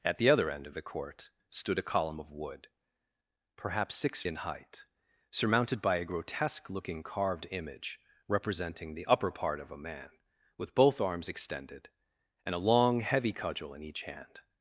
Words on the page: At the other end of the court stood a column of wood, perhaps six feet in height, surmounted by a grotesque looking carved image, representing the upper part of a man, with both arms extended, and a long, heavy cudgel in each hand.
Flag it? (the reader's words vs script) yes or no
yes